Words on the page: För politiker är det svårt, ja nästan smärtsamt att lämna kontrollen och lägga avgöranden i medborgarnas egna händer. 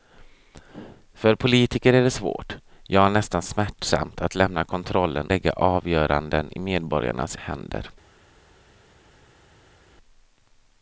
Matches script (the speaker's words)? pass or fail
fail